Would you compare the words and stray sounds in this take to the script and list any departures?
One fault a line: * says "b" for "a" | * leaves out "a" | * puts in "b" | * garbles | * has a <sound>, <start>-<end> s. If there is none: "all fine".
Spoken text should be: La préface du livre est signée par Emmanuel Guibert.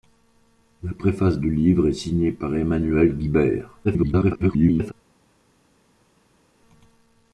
* garbles